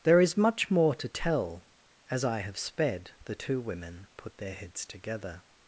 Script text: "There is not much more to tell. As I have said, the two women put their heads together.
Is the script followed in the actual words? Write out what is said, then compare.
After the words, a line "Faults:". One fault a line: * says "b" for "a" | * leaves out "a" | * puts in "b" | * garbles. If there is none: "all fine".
"There is much more to tell. As I have sped, the two women put their heads together.
Faults:
* leaves out "not"
* says "sped" for "said"